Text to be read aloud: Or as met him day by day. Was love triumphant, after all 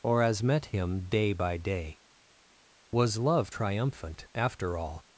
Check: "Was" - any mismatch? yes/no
no